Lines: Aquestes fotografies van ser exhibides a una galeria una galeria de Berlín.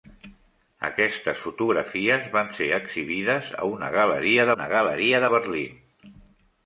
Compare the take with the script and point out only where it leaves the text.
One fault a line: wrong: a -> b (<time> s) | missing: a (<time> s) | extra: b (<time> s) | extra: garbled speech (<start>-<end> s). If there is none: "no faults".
no faults